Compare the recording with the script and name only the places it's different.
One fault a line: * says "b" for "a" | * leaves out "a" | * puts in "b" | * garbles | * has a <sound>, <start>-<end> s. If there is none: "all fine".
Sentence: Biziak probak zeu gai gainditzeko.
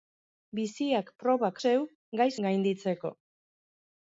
all fine